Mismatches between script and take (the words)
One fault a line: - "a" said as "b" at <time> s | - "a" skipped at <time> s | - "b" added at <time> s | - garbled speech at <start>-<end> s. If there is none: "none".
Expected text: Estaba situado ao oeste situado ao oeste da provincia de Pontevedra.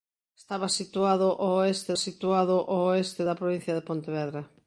none